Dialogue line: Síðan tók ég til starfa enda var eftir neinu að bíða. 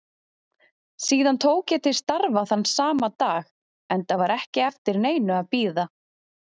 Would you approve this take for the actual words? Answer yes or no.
no